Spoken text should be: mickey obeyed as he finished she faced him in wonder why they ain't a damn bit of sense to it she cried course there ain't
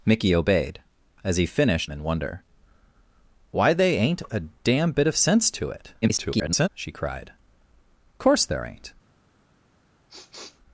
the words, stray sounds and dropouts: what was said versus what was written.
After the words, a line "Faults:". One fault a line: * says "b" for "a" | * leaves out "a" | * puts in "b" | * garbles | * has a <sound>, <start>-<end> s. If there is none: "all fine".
mickey obeyed as he finished in wonder why they ain't a damn bit of sense to it [garbled] she cried course there ain't
Faults:
* leaves out "she faced him"
* garbles
* has a sniff, 10.1-10.6 s